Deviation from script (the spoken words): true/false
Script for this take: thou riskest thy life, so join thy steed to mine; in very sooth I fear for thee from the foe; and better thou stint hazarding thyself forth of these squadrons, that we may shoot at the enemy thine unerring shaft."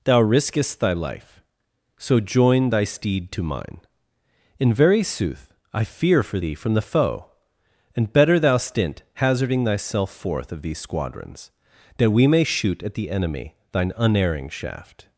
false